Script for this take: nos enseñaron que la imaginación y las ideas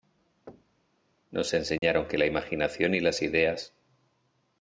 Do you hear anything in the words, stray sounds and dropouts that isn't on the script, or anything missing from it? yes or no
yes